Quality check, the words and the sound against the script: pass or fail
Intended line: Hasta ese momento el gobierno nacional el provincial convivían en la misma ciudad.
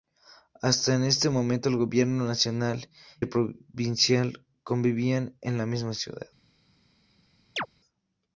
fail